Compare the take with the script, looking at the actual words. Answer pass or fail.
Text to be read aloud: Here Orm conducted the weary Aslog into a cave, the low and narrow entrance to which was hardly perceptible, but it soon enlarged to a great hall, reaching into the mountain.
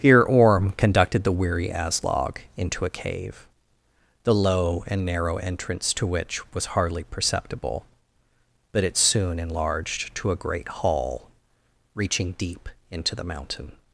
fail